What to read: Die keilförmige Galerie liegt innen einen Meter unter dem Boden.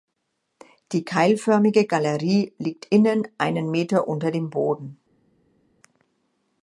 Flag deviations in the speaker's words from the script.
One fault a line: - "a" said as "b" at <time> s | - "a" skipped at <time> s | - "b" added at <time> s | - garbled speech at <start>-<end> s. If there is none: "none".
none